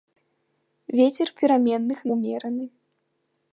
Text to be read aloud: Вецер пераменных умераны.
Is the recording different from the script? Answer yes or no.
no